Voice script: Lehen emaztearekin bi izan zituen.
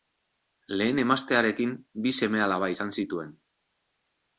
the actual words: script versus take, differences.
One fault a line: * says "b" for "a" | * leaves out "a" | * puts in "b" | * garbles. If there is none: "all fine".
* puts in "seme alaba"